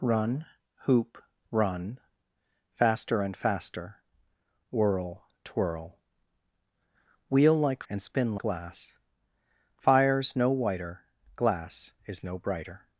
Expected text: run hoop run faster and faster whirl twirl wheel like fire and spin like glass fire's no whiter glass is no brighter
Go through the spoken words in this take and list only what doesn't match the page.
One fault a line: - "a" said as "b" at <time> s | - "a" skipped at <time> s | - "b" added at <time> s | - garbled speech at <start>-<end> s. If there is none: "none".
- "fire" skipped at 7.8 s
- "like" skipped at 8.4 s